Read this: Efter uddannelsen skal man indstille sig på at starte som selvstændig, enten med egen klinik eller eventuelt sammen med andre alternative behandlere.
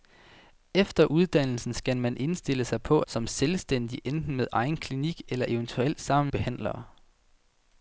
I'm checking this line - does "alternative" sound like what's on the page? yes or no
no